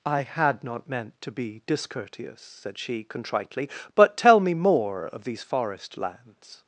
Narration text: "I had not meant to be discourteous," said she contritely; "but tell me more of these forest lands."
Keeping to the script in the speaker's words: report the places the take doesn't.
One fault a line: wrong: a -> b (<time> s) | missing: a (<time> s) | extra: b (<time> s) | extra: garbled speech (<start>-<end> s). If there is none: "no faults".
no faults